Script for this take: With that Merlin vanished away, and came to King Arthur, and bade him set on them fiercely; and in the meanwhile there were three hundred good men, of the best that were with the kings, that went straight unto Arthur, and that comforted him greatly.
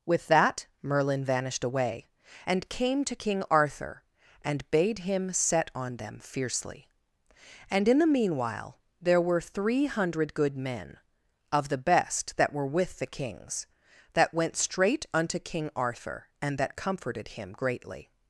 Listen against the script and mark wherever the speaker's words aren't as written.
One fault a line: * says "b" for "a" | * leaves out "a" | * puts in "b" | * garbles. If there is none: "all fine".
* puts in "King"